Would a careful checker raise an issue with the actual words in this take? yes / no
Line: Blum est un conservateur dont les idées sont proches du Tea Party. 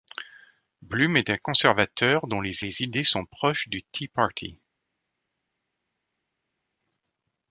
yes